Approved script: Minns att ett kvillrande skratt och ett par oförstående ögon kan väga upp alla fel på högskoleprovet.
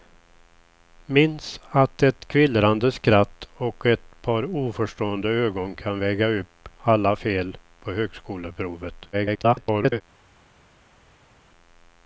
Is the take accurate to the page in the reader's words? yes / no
no